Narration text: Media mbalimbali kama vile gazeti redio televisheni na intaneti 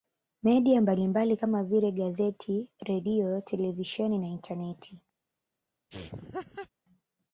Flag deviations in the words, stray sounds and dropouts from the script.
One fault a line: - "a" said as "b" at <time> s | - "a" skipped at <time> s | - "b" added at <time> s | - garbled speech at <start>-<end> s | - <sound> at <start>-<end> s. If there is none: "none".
- laugh at 5.9-6.7 s